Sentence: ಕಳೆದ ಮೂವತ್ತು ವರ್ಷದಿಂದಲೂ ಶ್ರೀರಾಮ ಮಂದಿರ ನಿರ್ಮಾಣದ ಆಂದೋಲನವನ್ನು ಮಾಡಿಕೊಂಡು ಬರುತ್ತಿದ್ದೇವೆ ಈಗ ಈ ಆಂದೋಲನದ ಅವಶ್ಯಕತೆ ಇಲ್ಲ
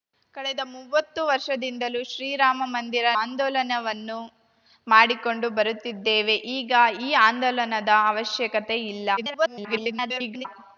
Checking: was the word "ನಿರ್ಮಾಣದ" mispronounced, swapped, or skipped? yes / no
yes